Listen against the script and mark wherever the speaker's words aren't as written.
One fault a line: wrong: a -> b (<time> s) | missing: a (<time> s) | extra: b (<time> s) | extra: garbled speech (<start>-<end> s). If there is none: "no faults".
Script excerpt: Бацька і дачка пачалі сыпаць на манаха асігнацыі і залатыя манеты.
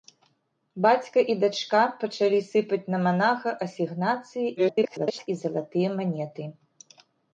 extra: garbled speech (4.6-5.3 s)